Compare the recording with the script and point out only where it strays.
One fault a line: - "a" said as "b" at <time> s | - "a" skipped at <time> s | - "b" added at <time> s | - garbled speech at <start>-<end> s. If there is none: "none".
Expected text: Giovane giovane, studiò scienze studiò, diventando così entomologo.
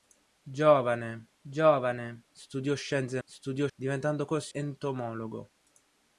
none